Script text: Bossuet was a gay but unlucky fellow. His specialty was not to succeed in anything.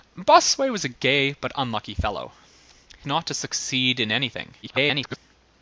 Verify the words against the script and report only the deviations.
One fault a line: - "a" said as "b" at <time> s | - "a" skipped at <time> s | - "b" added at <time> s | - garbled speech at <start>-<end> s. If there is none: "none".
- "His specialty was" skipped at 2.3 s
- garbled speech at 4.6-5.2 s